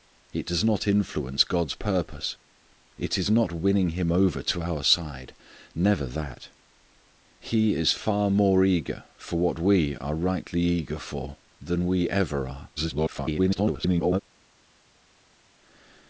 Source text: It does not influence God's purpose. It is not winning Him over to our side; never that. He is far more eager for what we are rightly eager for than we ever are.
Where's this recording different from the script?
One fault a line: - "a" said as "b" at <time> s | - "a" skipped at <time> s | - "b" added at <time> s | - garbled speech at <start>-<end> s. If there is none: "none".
- garbled speech at 12.8-14.2 s